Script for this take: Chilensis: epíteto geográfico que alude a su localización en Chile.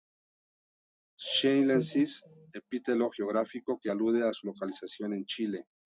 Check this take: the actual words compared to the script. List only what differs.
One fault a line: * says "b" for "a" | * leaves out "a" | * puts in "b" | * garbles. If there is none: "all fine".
all fine